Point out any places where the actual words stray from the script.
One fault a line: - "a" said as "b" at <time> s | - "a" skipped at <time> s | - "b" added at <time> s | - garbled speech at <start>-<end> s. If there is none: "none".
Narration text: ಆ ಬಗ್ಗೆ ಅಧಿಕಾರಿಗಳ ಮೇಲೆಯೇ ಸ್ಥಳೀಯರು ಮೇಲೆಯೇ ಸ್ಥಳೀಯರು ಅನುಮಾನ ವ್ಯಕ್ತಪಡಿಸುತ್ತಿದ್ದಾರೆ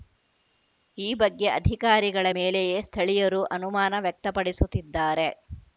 - "ಆ" said as "ಈ" at 1.0 s
- "ಮೇಲೆಯೇ ಸ್ಥಳೀಯರು" skipped at 3.4 s